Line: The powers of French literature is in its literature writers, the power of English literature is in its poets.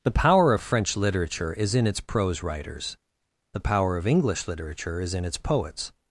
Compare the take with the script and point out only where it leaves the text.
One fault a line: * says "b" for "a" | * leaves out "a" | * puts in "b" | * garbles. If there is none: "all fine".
* says "power" for "powers"
* says "prose" for "literature"